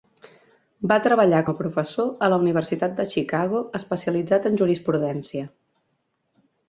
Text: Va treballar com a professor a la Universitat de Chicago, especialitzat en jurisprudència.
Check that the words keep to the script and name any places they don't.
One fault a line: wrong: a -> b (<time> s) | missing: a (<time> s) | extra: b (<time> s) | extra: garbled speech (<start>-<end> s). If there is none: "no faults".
missing: com (1.4 s)